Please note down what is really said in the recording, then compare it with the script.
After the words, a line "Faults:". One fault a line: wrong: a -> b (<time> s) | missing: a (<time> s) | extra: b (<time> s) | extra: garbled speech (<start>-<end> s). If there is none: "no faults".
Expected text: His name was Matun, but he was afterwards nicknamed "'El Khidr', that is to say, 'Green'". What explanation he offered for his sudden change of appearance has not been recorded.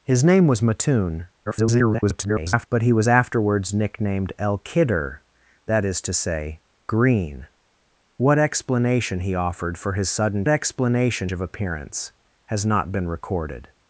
His name was Matun, [garbled] but he was afterwards nicknamed "'El Khidr', that is to say, 'Green'". What explanation he offered for his sudden explanation of appearance has not been recorded.
Faults:
extra: garbled speech (1.5-2.7 s)
wrong: change -> explanation (10.5 s)